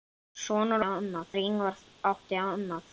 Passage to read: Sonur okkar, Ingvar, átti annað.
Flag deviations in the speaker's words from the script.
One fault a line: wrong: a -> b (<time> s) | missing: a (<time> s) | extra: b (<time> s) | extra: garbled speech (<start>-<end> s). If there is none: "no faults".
wrong: okkar -> annað (0.8 s)